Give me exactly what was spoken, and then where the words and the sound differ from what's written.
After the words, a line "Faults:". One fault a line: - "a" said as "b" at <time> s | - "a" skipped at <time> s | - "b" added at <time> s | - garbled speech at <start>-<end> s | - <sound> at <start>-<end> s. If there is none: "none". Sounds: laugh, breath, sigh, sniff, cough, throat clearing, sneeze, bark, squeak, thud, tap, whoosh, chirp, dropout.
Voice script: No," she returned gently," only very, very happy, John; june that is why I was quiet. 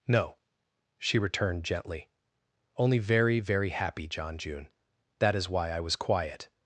No," she returned gently," only very, very happy, John; june that is why I was quiet.
Faults:
none